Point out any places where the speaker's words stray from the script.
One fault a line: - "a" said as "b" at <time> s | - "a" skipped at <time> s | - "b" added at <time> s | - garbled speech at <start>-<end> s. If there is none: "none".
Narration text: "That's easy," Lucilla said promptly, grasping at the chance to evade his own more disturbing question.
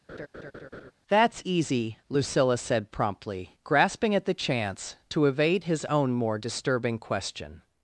none